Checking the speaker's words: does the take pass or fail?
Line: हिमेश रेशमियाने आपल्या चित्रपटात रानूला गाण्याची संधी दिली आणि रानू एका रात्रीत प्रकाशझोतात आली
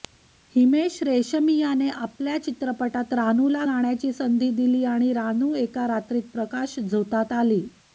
pass